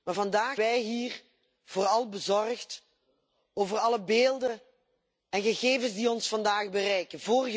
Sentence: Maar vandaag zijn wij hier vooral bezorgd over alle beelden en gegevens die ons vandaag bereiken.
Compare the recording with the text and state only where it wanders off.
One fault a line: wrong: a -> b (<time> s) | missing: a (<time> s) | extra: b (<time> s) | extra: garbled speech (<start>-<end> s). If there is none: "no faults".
missing: zijn (0.6 s)